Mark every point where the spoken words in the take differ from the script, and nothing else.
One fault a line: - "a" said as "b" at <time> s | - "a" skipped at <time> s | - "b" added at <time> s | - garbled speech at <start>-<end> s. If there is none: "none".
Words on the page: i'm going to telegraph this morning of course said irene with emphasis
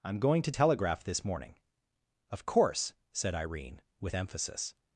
none